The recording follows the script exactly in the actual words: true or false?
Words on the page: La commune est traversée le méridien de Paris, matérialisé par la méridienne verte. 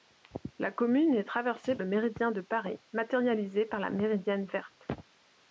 true